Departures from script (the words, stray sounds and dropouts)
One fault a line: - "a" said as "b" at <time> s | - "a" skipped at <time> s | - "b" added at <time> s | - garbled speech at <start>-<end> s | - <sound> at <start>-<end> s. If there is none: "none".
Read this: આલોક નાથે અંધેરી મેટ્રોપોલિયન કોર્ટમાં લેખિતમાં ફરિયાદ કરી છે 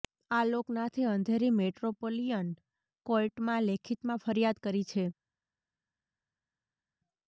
none